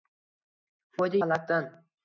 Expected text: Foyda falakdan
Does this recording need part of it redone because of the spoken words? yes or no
no